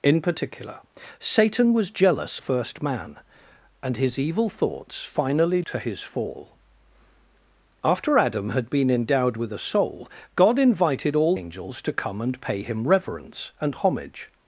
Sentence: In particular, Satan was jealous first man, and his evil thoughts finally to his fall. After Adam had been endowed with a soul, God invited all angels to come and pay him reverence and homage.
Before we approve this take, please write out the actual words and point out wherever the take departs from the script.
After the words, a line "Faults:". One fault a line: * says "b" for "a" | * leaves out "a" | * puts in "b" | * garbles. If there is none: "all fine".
In particular, Satan was jealous first man, and his evil thoughts finally to his fall. After Adam had been endowed with a soul, God invited all angels to come and pay him reverence and homage.
Faults:
all fine